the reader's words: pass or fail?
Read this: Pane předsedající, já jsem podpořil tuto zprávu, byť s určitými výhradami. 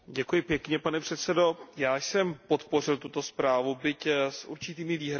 pass